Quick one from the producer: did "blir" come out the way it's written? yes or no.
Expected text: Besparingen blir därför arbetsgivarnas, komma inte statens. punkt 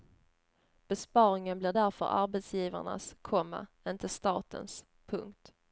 yes